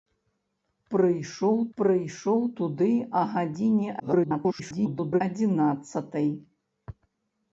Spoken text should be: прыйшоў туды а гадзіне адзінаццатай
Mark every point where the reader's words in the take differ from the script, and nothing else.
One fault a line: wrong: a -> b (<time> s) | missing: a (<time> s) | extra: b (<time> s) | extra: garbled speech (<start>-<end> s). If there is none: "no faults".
extra: прыйшоў (1.8 s)
extra: garbled speech (4.0-5.2 s)